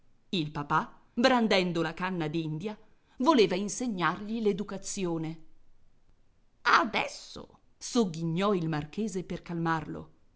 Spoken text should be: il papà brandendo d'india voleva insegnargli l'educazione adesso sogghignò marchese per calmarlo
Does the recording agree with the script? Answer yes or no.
no